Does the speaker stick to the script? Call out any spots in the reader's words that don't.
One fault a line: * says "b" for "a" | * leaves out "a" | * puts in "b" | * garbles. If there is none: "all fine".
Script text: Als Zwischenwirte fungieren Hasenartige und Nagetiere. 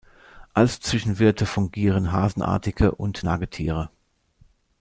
all fine